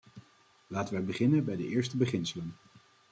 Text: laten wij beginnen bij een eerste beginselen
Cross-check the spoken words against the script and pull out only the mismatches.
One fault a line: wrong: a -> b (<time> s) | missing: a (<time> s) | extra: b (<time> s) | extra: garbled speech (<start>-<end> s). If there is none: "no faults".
wrong: een -> de (1.6 s)